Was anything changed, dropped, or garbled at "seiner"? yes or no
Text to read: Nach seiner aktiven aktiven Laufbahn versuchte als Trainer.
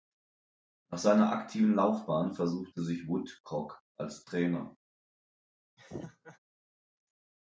no